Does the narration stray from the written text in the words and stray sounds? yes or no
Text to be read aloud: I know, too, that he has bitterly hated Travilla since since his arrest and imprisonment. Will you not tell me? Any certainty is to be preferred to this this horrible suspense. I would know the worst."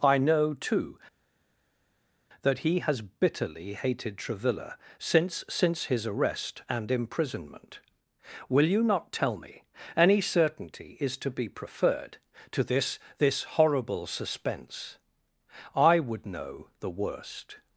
no